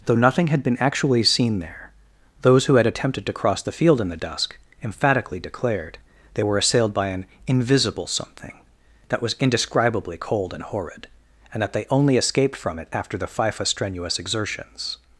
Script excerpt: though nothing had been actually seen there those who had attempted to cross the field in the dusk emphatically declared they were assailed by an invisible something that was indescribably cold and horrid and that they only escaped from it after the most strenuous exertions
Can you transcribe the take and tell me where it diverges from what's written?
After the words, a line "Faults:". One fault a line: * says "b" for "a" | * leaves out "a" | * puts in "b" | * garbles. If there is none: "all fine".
though nothing had been actually seen there those who had attempted to cross the field in the dusk emphatically declared they were assailed by an invisible something that was indescribably cold and horrid and that they only escaped from it after the fifa strenuous exertions
Faults:
* says "fifa" for "most"